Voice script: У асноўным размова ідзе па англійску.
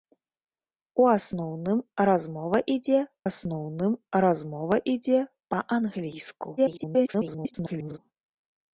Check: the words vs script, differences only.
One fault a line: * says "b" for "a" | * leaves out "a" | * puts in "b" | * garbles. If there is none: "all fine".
* puts in "асноўным размова ідзе"
* garbles